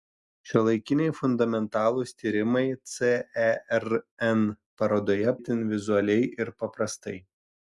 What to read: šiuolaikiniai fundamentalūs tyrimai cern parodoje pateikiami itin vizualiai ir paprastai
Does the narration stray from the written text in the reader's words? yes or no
yes